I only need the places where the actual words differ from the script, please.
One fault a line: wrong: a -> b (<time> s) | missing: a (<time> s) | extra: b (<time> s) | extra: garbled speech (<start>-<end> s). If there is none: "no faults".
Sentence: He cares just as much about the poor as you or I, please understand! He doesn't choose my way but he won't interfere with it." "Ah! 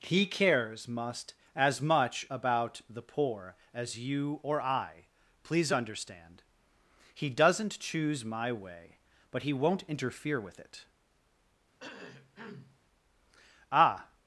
wrong: just -> must (0.9 s)